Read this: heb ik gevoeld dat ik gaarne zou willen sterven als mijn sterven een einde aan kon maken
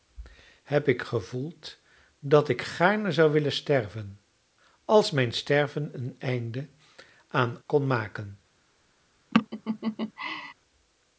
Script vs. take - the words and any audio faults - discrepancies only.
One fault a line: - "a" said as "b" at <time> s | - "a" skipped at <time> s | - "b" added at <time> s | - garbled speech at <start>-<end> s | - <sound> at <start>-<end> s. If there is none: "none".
- laugh at 9.3-10.5 s